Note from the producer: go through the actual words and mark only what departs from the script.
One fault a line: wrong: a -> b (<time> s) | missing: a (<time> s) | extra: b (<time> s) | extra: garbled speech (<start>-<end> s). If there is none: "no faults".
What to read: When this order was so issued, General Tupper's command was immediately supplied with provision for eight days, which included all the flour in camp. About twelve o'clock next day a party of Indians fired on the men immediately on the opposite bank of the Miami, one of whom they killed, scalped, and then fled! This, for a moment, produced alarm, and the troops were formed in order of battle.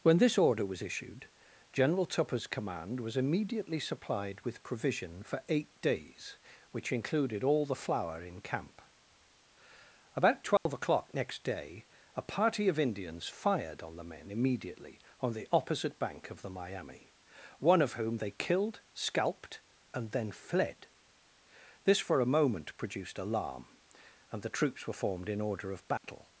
missing: so (0.8 s)